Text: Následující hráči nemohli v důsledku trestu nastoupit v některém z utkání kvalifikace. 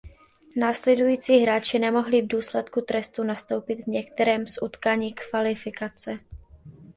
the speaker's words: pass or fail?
pass